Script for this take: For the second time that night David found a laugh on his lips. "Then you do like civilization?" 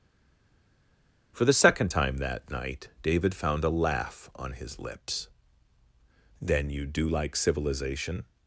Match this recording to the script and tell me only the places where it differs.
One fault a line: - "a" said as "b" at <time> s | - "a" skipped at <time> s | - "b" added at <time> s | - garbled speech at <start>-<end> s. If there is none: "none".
none